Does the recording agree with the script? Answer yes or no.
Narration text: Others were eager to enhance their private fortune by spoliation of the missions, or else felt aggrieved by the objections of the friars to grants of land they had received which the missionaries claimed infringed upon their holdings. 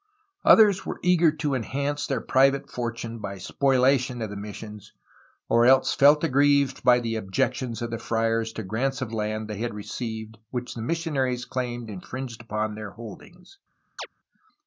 yes